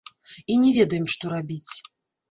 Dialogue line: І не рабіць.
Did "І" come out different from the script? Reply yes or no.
no